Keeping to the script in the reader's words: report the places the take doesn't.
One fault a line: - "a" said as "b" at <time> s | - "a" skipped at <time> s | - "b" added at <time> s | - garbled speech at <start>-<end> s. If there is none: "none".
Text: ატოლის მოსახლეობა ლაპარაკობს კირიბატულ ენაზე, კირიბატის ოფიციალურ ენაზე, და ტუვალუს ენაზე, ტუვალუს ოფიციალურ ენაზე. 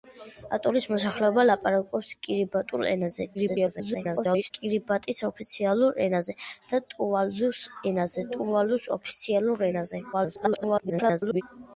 - garbled speech at 3.3-4.5 s
- garbled speech at 10.1-11.4 s